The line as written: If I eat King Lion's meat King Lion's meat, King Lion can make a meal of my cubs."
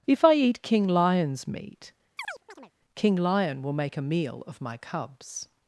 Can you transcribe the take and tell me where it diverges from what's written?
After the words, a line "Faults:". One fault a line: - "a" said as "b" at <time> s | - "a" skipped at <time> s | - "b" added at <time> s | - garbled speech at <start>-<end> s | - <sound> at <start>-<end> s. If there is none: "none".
If I eat King Lion's meat, King Lion will make a meal of my cubs."
Faults:
- chirp at 2.2-2.7 s
- "Lion's meat King" skipped at 3.2 s
- "can" said as "will" at 3.6 s